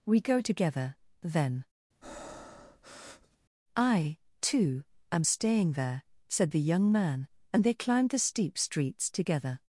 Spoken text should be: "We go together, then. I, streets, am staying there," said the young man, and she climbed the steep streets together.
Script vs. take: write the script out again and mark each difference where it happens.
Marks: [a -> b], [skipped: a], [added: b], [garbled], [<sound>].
"We go together, then. [breath] I, [streets, -> too] am staying there," said the young man, and [she -> they] climbed the steep streets together.